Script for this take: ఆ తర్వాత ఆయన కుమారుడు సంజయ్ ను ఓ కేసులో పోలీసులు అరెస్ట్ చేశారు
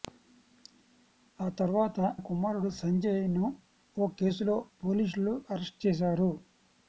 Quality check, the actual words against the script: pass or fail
fail